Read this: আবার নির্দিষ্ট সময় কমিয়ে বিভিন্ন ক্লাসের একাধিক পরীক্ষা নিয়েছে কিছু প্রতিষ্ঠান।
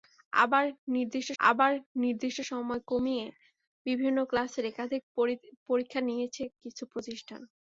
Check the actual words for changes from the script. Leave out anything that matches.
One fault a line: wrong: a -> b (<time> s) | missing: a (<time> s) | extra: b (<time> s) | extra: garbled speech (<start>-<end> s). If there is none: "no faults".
extra: আবার নির্দিষ্ট (1.4 s)